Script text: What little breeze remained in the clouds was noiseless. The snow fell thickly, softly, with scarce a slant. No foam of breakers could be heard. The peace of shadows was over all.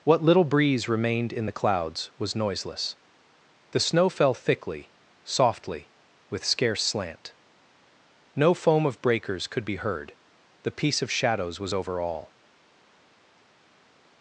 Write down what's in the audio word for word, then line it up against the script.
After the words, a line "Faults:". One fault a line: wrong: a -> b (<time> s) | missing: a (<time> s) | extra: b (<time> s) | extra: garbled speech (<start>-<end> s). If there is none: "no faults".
What little breeze remained in the clouds was noiseless. The snow fell thickly, softly, with scarce slant. No foam of breakers could be heard. The peace of shadows was over all.
Faults:
missing: a (6.8 s)